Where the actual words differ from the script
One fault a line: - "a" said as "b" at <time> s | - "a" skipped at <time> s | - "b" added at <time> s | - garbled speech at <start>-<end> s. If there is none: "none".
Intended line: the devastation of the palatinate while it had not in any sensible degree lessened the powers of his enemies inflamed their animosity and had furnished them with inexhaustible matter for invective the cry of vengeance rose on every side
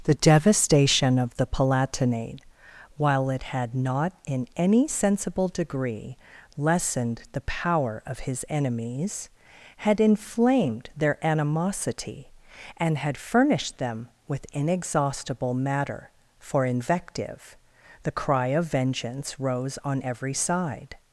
- "powers" said as "power" at 7.4 s
- "had" added at 9.8 s